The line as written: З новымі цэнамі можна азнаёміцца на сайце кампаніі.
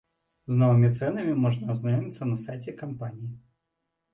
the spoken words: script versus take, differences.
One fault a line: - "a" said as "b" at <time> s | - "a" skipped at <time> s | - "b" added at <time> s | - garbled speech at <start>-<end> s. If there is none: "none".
none